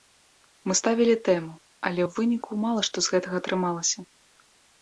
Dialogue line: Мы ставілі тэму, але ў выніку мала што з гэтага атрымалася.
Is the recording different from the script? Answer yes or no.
no